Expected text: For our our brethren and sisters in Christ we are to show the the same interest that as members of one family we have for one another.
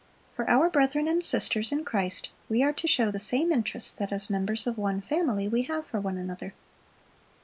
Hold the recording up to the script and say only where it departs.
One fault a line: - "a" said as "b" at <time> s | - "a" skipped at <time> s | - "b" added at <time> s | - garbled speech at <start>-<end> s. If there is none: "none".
- "our" skipped at 0.7 s
- "the" skipped at 3.2 s